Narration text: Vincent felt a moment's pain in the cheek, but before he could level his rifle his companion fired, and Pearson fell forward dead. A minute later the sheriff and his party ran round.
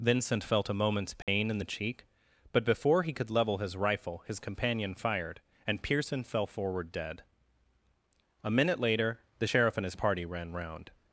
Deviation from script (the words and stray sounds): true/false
true